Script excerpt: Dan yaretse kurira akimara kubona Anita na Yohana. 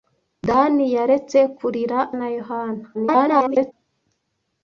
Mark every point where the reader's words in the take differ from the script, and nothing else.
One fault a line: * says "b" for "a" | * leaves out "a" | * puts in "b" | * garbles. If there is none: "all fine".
* leaves out "akimara kubona Anita"
* garbles